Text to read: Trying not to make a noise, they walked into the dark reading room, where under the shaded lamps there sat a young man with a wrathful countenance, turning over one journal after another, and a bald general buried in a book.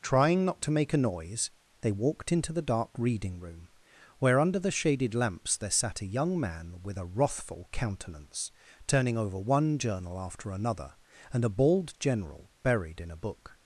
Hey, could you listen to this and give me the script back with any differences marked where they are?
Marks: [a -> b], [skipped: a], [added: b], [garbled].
Trying not to make a noise, they walked into the dark reading room, where under the shaded lamps there sat a young man with a wrathful countenance, turning over one journal after another, and a bald general buried in a book.